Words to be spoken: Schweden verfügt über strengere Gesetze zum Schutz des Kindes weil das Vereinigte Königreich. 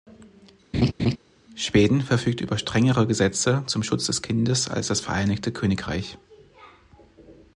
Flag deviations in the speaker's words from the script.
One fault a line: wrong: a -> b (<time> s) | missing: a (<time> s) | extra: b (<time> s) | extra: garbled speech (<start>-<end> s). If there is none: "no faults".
wrong: weil -> als (4.7 s)